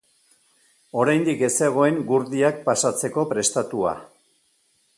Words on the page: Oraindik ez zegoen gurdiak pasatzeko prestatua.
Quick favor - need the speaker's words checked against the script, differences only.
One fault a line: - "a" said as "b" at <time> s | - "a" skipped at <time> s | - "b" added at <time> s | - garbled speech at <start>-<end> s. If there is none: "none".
none